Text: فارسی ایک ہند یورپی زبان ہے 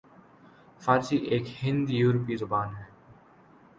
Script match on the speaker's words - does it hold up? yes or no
yes